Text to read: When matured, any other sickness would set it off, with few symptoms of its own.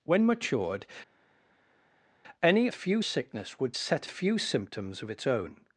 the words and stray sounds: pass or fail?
fail